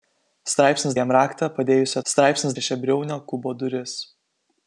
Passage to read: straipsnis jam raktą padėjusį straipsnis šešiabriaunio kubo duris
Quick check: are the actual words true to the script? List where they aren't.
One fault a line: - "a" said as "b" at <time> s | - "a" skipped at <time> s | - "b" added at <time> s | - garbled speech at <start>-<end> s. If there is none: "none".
none